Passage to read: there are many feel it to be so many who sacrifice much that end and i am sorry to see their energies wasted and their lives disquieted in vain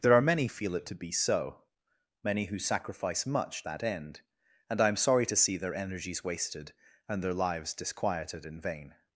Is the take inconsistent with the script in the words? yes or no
no